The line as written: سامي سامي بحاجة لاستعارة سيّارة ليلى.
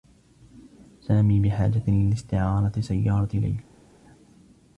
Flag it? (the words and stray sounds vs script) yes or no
yes